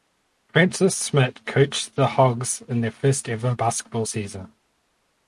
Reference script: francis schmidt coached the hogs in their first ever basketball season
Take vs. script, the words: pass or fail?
pass